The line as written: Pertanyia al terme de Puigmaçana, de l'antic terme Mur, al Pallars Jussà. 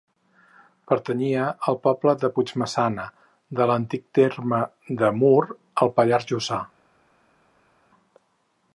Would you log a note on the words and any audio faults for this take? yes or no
yes